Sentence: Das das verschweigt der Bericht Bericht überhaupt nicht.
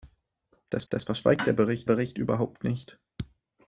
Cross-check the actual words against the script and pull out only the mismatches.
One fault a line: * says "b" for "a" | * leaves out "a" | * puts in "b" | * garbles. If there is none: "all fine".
all fine